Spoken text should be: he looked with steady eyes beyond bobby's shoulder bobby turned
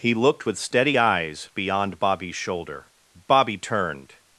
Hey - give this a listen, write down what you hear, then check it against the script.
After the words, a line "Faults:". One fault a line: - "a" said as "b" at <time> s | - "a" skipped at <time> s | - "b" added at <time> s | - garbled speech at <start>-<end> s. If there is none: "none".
he looked with steady eyes beyond bobby's shoulder bobby turned
Faults:
none